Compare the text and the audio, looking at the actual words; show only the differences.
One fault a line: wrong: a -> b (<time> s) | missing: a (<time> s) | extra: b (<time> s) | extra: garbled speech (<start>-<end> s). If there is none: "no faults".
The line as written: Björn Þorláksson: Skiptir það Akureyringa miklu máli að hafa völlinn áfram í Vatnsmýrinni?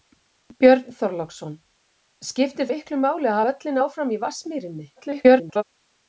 missing: það Akureyringa (2.7 s)
missing: hafa (3.4 s)
extra: garbled speech (5.0-5.6 s)